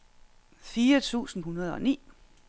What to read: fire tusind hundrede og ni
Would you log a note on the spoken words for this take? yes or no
no